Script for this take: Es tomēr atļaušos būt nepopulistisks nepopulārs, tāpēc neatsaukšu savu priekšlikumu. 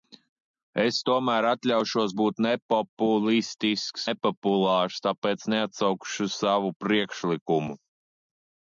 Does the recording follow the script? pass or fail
pass